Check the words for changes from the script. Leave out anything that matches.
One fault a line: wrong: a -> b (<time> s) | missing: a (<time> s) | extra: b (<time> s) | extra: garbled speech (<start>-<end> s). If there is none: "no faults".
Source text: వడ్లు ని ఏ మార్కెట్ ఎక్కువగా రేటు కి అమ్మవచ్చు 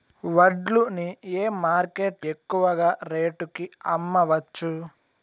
no faults